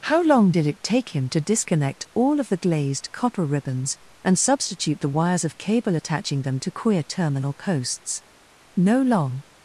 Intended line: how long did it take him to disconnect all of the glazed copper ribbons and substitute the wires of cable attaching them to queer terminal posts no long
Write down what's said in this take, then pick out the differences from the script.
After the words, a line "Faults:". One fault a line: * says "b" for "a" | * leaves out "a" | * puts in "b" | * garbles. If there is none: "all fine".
how long did it take him to disconnect all of the glazed copper ribbons and substitute the wires of cable attaching them to queer terminal posts no long
Faults:
all fine